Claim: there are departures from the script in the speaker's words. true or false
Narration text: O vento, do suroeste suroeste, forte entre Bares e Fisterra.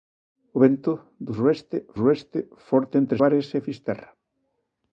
false